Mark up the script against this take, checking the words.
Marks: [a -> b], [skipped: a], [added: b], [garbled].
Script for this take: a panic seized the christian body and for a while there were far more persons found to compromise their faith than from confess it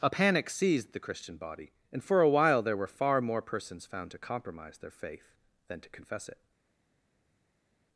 a panic seized the christian body and for a while there were far more persons found to compromise their faith than [from -> to] confess it